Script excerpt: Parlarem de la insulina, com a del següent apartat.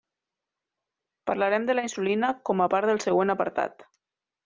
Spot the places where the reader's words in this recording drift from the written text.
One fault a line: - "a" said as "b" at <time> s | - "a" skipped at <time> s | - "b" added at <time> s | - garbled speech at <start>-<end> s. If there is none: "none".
- "part" added at 2.7 s